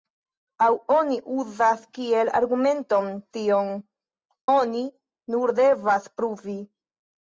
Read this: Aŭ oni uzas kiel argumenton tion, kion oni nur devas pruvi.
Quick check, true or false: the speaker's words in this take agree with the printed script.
false